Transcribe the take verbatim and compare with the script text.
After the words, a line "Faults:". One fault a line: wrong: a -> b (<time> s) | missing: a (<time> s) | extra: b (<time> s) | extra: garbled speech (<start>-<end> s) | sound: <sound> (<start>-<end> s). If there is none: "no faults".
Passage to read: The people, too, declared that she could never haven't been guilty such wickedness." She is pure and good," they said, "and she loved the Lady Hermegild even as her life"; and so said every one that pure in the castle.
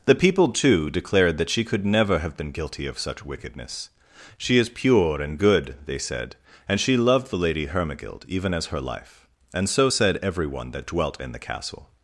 The people, too, declared that she could never have been guilty of such wickedness." She is pure and good," they said, "and she loved the Lady Hermegild even as her life"; and so said every one that dwelt in the castle.
Faults:
wrong: haven't -> have (2.2 s)
extra: of (2.9 s)
wrong: pure -> dwelt (10.9 s)